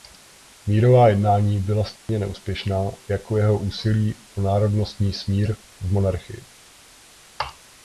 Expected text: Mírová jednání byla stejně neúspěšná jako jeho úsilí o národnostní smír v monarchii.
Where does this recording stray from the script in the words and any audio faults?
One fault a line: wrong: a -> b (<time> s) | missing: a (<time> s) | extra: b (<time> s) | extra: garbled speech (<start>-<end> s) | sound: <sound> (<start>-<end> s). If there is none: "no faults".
sound: dropout (2.0-2.1 s)